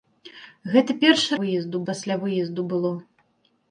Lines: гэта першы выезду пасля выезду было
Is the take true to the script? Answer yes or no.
yes